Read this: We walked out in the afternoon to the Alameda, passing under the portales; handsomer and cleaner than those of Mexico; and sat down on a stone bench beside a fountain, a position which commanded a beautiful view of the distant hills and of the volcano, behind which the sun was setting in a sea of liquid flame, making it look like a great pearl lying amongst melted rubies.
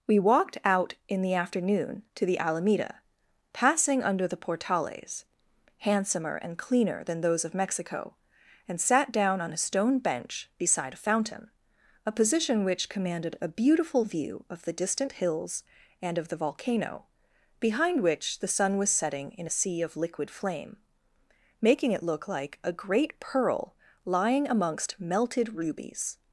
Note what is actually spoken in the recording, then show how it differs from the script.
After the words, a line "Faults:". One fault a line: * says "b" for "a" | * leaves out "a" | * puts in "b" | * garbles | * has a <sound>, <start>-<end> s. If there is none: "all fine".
We walked out in the afternoon to the Alameda, passing under the portales; handsomer and cleaner than those of Mexico; and sat down on a stone bench beside a fountain, a position which commanded a beautiful view of the distant hills and of the volcano, behind which the sun was setting in a sea of liquid flame, making it look like a great pearl lying amongst melted rubies.
Faults:
all fine